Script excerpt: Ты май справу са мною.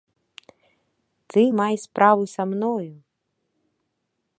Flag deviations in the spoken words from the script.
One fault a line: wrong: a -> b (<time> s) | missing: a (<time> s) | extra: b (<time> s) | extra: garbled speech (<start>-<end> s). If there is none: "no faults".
no faults